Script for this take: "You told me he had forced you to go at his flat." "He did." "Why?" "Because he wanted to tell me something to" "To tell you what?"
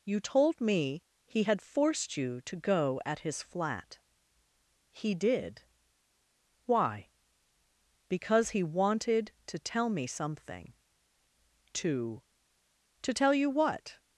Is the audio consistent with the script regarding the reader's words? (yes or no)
yes